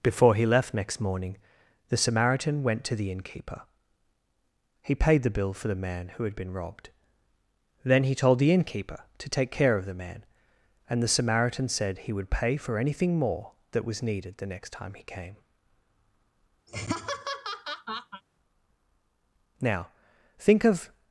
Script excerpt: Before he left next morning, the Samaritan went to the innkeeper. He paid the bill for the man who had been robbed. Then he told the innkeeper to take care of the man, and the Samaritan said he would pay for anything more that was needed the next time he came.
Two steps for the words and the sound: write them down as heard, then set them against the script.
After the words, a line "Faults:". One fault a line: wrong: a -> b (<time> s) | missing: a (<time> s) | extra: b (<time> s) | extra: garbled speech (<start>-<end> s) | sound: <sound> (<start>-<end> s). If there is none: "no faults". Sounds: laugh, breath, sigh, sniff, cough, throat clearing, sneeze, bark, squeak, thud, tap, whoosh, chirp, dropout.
Before he left next morning, the Samaritan went to the innkeeper. He paid the bill for the man who had been robbed. Then he told the innkeeper to take care of the man, and the Samaritan said he would pay for anything more that was needed the next time he came. "Now, think of
Faults:
sound: laugh (16.7-18.2 s)
extra: Now think of (19.6 s)